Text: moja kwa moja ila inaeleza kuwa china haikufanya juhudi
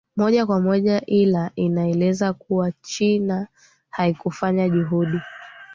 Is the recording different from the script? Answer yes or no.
no